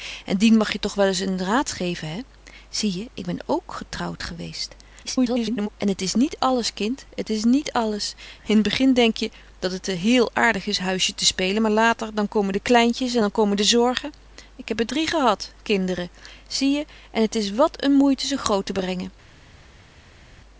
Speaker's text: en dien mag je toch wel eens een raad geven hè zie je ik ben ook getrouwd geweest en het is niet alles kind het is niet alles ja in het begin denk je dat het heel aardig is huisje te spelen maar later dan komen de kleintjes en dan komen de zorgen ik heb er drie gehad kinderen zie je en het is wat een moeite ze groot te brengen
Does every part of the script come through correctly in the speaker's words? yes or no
no